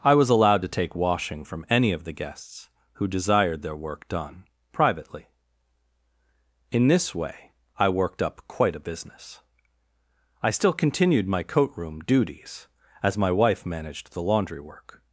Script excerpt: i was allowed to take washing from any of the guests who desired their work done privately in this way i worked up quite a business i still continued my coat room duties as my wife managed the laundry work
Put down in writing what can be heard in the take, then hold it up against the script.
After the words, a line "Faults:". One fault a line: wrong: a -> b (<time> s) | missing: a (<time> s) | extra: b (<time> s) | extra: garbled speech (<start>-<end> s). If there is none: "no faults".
i was allowed to take washing from any of the guests who desired their work done privately in this way i worked up quite a business i still continued my coat room duties as my wife managed the laundry work
Faults:
no faults